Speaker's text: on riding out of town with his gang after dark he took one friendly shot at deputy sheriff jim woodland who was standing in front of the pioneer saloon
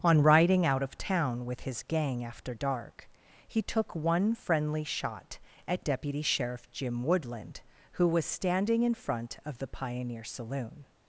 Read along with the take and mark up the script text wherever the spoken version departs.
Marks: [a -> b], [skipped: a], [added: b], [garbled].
on riding out of town with his gang after dark he took one friendly shot at deputy sheriff jim woodland who was standing in front of the pioneer saloon